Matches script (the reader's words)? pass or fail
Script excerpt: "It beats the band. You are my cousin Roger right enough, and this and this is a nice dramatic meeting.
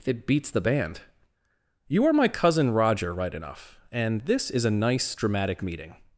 fail